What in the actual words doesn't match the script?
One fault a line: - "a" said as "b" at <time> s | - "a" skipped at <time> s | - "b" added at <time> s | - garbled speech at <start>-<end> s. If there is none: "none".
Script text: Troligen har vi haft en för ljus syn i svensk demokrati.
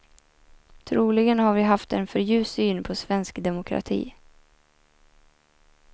- "i" said as "på" at 2.8 s